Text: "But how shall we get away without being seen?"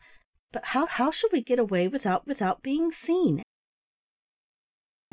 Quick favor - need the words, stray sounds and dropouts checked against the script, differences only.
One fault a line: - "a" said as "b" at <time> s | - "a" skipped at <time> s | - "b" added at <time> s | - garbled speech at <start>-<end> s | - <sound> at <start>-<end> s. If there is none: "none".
- "how" added at 0.9 s
- "without" added at 2.2 s